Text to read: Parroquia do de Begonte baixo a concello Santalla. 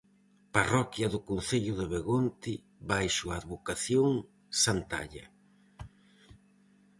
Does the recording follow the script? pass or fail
fail